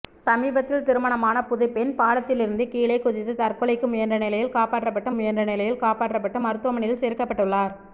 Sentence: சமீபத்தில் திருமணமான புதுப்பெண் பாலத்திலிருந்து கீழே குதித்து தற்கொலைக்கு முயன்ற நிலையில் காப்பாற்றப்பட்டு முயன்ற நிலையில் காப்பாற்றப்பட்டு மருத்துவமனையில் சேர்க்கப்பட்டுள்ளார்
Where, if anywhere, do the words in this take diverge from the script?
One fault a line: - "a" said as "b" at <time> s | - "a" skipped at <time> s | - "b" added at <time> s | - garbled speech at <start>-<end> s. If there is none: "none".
none